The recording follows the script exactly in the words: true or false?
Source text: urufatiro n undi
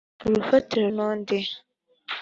true